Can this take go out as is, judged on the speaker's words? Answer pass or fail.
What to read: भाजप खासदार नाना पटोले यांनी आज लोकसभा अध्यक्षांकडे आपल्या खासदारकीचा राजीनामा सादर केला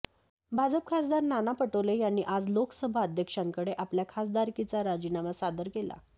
pass